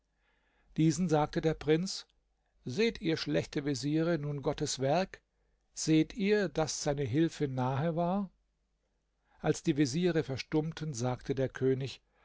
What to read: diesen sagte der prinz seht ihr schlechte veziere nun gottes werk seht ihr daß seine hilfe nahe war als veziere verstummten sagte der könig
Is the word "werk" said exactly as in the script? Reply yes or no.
yes